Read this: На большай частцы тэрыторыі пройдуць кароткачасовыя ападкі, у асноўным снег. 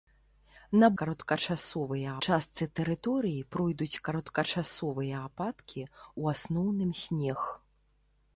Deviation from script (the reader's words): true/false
true